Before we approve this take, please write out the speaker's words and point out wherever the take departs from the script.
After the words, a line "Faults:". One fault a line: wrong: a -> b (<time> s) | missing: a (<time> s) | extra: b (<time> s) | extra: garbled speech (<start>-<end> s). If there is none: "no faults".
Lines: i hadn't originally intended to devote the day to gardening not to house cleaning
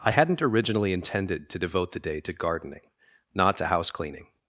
i hadn't originally intended to devote the day to gardening not to house cleaning
Faults:
no faults